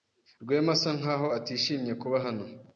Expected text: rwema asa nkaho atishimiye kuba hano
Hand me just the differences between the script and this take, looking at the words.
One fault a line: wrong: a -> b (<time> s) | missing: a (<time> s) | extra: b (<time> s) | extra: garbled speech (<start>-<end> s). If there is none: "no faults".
no faults